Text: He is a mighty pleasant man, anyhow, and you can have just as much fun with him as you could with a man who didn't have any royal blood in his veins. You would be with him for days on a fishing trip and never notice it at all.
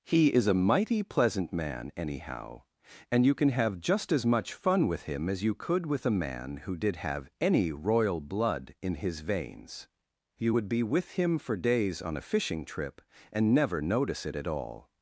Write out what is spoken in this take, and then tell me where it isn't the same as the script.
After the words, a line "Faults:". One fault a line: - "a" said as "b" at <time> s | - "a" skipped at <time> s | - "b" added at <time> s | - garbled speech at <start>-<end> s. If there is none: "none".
He is a mighty pleasant man, anyhow, and you can have just as much fun with him as you could with a man who did have any royal blood in his veins. You would be with him for days on a fishing trip and never notice it at all.
Faults:
- "didn't" said as "did" at 6.8 s